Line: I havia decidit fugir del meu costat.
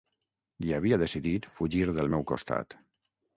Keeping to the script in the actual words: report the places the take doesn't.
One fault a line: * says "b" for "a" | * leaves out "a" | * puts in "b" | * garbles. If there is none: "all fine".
all fine